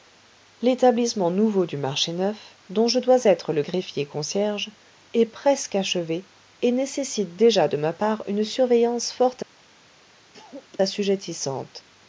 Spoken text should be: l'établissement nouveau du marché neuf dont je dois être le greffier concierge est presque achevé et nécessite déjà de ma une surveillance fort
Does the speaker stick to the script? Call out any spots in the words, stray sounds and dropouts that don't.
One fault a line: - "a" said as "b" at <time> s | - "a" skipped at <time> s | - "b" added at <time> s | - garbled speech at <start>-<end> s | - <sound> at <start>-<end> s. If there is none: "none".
- "part" added at 7.9 s
- cough at 10.3-10.8 s